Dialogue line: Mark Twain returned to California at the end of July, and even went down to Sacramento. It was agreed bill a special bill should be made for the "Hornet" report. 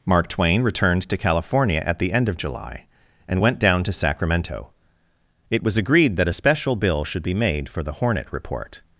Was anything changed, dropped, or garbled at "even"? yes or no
yes